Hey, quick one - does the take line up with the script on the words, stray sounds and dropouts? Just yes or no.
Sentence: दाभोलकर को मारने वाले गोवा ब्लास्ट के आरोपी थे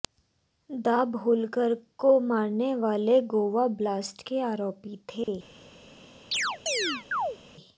no